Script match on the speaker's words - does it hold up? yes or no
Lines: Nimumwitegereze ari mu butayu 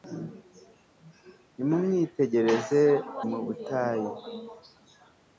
no